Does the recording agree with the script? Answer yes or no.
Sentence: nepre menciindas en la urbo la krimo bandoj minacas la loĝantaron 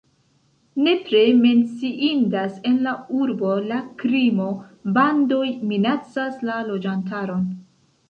yes